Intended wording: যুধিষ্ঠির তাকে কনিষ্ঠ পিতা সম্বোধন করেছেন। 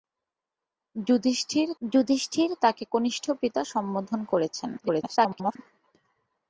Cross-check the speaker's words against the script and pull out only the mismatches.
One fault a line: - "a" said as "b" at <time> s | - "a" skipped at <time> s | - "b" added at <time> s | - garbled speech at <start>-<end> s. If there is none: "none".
- "যুধিষ্ঠির" added at 1.8 s
- garbled speech at 4.8-5.6 s